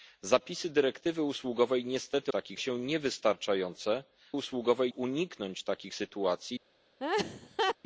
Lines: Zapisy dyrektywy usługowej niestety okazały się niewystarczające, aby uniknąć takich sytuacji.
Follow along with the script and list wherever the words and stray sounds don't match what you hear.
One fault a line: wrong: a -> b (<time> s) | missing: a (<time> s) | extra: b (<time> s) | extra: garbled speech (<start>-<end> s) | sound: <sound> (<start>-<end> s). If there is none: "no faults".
wrong: okazały -> takich (2.3 s)
wrong: aby -> usługowej (4.3 s)
sound: laugh (7.0-7.8 s)